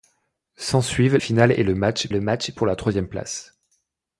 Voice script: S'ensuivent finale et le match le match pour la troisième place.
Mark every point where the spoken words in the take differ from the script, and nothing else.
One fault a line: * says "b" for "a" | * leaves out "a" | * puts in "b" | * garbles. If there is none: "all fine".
all fine